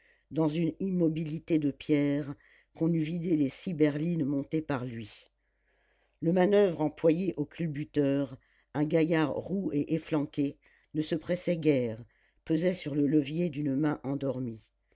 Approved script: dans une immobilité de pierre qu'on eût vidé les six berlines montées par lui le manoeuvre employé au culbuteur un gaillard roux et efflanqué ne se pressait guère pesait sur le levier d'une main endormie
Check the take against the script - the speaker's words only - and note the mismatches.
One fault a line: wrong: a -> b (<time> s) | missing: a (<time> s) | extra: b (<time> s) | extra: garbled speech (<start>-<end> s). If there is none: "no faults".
no faults